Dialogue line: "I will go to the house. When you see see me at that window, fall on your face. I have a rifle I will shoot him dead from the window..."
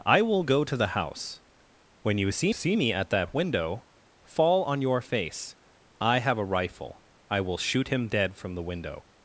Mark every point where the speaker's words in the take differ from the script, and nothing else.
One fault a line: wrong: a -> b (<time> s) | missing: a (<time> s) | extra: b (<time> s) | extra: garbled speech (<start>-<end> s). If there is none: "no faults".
no faults